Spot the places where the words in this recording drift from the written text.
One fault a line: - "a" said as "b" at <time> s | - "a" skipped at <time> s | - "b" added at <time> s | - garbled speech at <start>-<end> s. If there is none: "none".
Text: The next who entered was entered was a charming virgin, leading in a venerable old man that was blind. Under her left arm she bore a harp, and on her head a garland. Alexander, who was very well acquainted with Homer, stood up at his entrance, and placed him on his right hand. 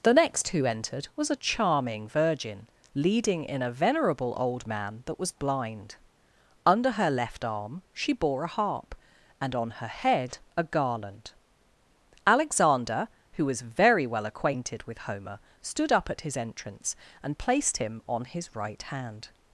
- "entered was" skipped at 1.3 s